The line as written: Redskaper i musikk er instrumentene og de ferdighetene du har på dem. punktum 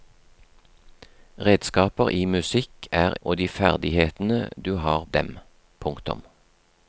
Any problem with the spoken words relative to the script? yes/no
yes